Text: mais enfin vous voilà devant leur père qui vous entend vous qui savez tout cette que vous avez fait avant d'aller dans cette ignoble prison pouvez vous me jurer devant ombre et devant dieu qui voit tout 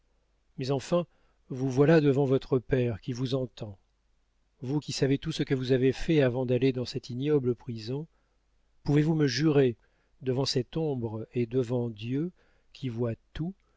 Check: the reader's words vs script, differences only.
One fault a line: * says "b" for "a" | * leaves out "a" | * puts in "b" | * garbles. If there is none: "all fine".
* says "votre" for "leur"
* says "ce" for "cette"
* puts in "cette"